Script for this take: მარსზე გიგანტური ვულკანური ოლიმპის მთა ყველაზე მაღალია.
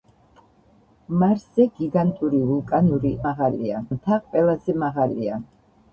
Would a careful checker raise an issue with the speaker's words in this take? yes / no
yes